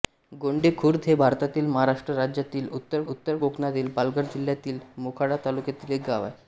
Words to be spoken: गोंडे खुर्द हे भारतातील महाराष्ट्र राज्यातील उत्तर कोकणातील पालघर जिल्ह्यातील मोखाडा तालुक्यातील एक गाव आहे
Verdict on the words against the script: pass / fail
fail